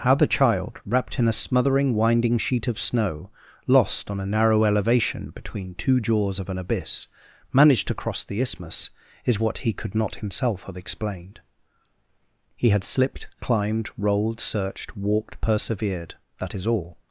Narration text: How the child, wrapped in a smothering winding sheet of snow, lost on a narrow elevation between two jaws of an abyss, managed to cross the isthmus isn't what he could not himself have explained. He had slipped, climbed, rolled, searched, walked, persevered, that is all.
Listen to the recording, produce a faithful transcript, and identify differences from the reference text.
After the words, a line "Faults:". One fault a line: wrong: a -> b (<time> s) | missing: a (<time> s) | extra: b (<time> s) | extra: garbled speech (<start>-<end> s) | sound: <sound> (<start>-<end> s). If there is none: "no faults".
How the child, wrapped in a smothering winding sheet of snow, lost on a narrow elevation between two jaws of an abyss, managed to cross the isthmus is what he could not himself have explained. He had slipped, climbed, rolled, searched, walked, persevered, that is all.
Faults:
wrong: isn't -> is (9.2 s)